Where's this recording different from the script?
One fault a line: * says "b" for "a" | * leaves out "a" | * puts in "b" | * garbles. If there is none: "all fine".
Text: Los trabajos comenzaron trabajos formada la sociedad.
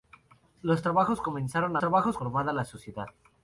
all fine